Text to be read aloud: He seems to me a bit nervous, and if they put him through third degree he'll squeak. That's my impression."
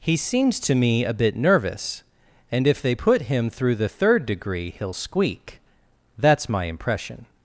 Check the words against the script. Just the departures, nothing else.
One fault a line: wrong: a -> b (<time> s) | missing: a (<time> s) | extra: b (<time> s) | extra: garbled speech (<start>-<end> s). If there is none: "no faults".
extra: the (3.7 s)